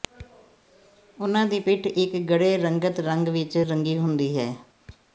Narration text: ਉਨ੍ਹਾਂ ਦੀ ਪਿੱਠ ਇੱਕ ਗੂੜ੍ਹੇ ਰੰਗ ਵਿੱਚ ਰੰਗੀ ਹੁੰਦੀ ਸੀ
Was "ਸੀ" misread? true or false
true